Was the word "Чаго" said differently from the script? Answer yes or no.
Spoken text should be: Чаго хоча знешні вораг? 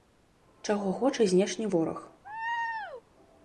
no